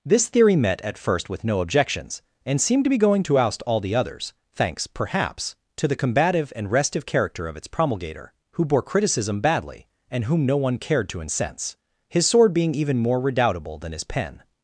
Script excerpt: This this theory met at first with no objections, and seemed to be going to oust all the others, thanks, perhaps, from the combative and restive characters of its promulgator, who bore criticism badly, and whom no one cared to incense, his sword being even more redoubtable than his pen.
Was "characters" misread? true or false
true